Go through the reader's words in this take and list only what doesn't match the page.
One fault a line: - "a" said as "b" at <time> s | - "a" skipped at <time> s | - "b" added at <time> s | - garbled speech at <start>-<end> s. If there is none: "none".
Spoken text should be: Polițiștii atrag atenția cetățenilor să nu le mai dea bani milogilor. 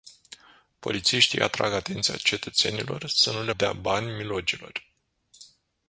- "mai" skipped at 3.5 s